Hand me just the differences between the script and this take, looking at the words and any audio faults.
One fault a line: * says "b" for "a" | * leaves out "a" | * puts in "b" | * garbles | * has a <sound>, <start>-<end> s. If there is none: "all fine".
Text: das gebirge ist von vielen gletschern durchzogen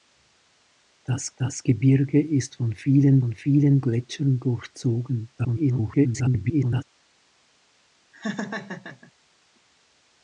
* puts in "das"
* puts in "von vielen"
* garbles
* has a laugh, 8.1-9.1 s